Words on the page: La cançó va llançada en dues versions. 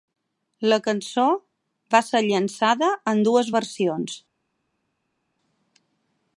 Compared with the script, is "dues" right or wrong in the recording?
right